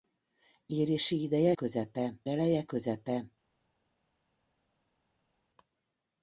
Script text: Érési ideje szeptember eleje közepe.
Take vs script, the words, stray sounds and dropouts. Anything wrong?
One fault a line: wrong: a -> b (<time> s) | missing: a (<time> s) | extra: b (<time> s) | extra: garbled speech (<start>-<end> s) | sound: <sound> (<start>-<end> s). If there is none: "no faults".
wrong: szeptember -> közepe (1.5 s)